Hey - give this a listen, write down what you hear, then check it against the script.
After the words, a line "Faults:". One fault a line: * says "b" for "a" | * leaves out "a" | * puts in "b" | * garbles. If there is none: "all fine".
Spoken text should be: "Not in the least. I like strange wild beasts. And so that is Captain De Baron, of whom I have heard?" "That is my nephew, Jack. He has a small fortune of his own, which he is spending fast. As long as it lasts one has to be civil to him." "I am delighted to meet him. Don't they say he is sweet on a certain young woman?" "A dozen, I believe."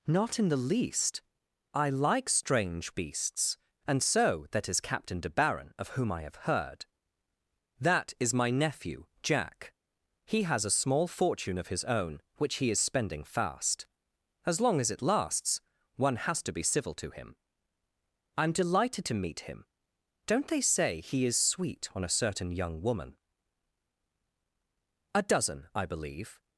"Not in the least. I like strange beasts. And so that is Captain De Baron, of whom I have heard?" "That is my nephew, Jack. He has a small fortune of his own, which he is spending fast. As long as it lasts one has to be civil to him." "I am delighted to meet him. Don't they say he is sweet on a certain young woman?" "A dozen, I believe."
Faults:
* leaves out "wild"